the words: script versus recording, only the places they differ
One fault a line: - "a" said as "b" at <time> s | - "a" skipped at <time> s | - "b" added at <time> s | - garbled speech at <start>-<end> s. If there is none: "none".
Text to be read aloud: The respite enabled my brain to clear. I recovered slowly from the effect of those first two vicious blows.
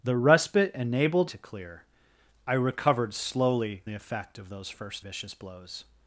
- "my brain" skipped at 1.3 s
- "from" skipped at 3.8 s
- "two" skipped at 5.1 s